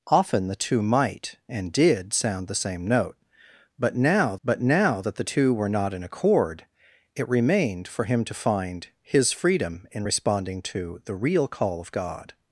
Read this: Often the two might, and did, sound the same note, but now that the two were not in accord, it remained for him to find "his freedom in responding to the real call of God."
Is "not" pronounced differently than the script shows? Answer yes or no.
no